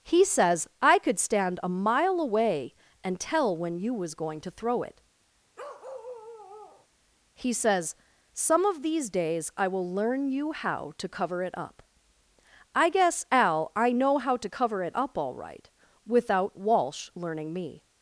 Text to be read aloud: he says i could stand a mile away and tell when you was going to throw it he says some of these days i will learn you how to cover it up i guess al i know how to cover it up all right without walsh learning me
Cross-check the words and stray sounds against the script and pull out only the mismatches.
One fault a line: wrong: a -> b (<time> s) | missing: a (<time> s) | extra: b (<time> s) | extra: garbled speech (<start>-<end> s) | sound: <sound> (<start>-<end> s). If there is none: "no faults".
sound: bark (5.6-6.9 s)